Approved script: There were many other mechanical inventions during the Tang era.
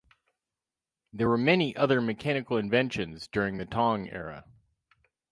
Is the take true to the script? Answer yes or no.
yes